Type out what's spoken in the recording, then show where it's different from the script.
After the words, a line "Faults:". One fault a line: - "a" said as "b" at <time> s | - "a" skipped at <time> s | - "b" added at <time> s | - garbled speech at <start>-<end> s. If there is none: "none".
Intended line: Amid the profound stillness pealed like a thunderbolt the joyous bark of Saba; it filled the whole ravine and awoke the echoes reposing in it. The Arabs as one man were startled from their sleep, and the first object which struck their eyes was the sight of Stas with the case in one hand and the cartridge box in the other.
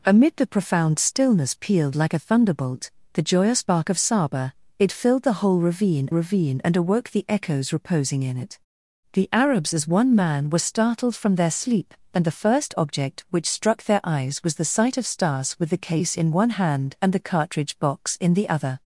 Amid the profound stillness pealed like a thunderbolt the joyous bark of Saba; it filled the whole ravine ravine and awoke the echoes reposing in it. The Arabs as one man were startled from their sleep, and the first object which struck their eyes was the sight of Stas with the case in one hand and the cartridge box in the other.
Faults:
- "ravine" added at 6.1 s